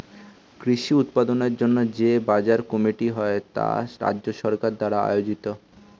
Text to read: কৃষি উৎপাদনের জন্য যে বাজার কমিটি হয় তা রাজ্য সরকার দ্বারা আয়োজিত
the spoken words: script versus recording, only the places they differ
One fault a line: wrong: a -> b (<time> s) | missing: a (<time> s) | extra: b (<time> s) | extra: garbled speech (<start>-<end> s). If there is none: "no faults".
no faults